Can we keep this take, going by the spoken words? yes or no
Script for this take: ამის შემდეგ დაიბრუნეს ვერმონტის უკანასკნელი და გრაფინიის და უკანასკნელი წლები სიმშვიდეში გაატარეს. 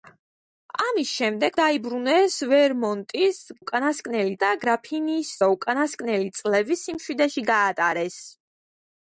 yes